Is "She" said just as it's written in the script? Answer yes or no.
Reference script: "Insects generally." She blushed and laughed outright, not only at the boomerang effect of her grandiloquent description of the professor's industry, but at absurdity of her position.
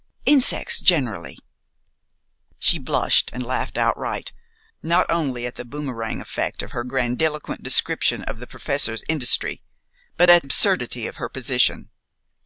yes